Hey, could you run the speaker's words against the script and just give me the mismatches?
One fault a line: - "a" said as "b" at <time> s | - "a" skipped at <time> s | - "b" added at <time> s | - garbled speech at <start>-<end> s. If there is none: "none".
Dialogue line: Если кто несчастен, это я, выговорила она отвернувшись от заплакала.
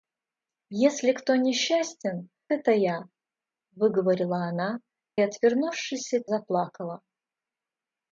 none